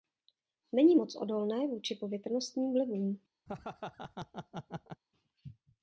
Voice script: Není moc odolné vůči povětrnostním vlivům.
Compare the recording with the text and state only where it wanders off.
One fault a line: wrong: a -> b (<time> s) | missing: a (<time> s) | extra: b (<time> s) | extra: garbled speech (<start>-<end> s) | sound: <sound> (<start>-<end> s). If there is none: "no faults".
sound: laugh (3.5-5.0 s)